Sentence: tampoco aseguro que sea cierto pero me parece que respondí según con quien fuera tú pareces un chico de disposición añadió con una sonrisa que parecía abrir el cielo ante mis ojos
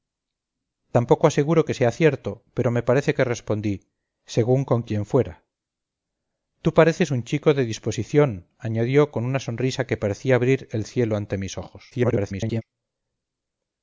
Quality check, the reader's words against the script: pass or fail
fail